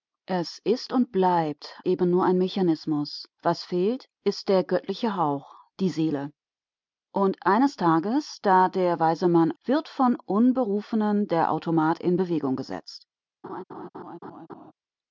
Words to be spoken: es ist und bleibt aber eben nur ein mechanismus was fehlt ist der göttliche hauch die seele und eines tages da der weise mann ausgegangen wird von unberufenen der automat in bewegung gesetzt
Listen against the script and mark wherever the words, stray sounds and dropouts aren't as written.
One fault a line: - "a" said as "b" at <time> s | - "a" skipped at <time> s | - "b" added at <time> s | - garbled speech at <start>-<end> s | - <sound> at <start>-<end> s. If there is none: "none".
- "aber" skipped at 1.8 s
- "ausgegangen" skipped at 9.6 s
- laugh at 13.4-14.7 s